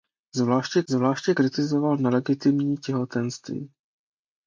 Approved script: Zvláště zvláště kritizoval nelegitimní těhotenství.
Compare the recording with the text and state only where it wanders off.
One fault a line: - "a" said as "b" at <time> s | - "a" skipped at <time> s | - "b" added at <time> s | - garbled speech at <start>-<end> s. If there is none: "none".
none